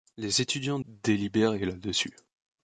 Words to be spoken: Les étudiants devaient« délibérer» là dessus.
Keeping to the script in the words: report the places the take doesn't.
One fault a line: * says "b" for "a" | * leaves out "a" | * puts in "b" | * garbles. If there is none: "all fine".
* leaves out "devaient"